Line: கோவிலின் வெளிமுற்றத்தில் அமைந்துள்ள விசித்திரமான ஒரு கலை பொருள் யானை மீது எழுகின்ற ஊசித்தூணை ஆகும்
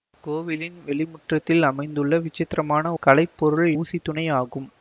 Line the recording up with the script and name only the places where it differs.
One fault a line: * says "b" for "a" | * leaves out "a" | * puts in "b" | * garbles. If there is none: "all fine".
* leaves out "ஒரு"
* leaves out "யானை மீது எழுகின்ற"